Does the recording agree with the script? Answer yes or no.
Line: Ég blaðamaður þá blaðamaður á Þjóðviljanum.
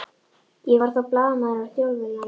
no